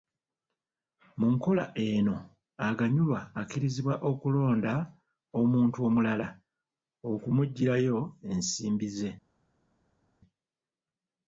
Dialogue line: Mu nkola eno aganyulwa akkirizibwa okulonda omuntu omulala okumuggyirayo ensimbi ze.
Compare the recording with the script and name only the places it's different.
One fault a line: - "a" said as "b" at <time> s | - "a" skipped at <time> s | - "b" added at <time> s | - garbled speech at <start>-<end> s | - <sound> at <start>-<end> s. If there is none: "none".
none